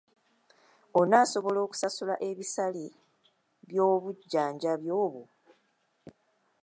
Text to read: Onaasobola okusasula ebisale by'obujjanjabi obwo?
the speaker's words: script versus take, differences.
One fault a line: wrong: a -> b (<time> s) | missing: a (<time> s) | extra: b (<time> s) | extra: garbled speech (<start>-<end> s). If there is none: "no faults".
no faults